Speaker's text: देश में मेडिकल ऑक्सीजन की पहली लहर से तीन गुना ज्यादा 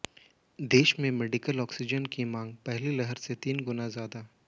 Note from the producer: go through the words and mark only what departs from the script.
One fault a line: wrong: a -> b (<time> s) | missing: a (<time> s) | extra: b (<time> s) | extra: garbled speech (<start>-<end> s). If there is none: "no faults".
extra: मांग (2.2 s)